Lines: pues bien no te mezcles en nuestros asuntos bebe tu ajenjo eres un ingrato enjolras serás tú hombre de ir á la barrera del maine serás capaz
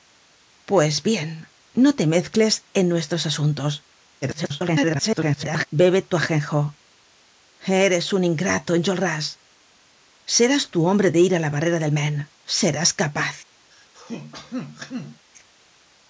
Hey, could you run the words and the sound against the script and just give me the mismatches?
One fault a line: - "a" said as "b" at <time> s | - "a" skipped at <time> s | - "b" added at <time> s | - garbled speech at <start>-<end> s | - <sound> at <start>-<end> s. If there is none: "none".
- garbled speech at 4.2-5.7 s
- throat clearing at 13.7-15.3 s